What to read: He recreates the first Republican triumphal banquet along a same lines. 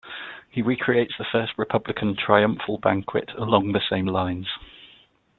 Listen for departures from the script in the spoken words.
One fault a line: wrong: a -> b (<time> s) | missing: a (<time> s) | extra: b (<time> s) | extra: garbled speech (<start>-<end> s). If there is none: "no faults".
wrong: a -> the (3.7 s)